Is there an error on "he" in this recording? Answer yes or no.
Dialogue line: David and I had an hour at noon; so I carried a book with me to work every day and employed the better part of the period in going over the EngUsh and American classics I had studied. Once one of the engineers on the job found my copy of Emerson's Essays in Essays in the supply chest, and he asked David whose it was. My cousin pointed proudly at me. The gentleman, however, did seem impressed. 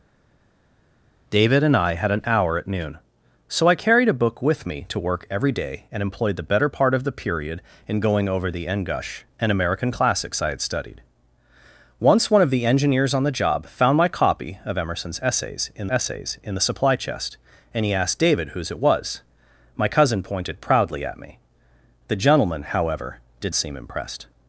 no